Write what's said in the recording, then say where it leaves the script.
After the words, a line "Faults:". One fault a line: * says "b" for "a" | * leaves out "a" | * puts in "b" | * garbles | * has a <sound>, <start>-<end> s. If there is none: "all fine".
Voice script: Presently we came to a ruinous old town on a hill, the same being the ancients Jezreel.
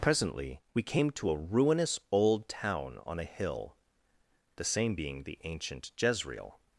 Presently we came to a ruinous old town on a hill, the same being the ancient Jezreel.
Faults:
* says "ancient" for "ancients"